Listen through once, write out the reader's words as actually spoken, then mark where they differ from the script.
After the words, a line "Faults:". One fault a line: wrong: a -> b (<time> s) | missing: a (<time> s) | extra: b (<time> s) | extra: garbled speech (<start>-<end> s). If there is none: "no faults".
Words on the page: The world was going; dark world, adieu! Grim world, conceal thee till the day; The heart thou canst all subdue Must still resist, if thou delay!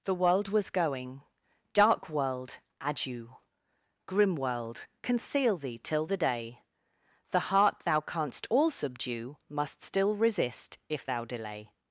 The world was going; dark world, adieu! Grim world, conceal thee till the day; The heart thou canst all subdue Must still resist, if thou delay!
Faults:
no faults